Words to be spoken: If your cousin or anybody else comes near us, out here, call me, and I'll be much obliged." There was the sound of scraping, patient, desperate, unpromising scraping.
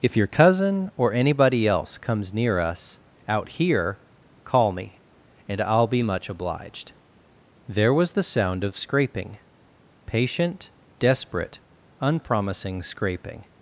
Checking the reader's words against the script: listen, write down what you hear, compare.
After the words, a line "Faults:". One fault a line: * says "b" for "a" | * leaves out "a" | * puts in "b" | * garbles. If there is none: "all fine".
If your cousin or anybody else comes near us, out here, call me, and I'll be much obliged." There was the sound of scraping, patient, desperate, unpromising scraping.
Faults:
all fine